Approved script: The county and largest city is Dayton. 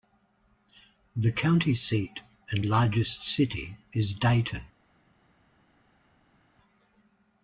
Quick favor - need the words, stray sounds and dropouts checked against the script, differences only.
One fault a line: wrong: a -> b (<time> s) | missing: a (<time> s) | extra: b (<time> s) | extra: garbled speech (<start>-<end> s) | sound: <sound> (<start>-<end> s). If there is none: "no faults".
extra: seat (1.8 s)